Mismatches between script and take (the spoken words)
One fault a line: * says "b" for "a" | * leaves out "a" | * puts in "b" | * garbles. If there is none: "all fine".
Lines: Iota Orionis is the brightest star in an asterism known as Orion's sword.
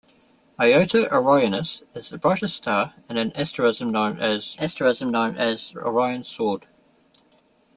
* puts in "asterism known as"